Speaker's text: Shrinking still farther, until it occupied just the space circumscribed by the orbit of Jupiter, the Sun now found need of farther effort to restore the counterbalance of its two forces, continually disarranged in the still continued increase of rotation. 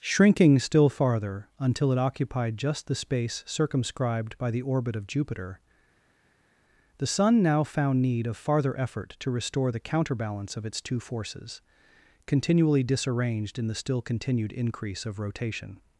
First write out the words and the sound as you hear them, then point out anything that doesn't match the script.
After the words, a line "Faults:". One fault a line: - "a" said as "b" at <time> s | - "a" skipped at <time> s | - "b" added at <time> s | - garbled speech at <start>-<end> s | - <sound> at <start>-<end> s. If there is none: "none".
Shrinking still farther, until it occupied just the space circumscribed by the orbit of Jupiter, the Sun now found need of farther effort to restore the counterbalance of its two forces, continually disarranged in the still continued increase of rotation.
Faults:
none